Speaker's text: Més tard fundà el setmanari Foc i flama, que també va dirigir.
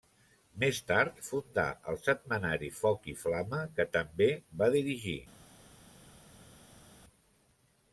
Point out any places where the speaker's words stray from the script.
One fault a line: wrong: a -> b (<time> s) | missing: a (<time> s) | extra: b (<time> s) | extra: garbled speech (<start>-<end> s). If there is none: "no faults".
no faults